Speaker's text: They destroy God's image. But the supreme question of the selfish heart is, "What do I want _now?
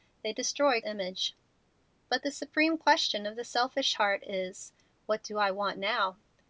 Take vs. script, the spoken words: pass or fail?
fail